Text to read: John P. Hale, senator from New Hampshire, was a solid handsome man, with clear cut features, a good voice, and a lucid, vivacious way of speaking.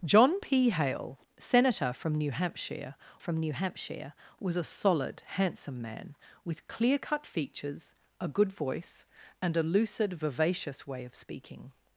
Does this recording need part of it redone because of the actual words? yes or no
yes